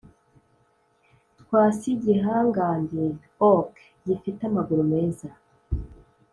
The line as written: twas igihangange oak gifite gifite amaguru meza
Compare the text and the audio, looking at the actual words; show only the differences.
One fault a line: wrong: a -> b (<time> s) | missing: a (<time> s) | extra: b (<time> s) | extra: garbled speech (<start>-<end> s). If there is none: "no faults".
missing: gifite (4.4 s)